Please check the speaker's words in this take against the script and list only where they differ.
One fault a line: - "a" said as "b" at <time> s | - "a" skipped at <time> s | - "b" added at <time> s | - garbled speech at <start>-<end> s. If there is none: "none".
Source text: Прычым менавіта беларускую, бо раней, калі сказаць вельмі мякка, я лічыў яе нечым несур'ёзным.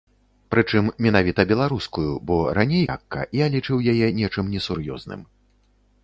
- "калі сказаць вельмі" skipped at 2.9 s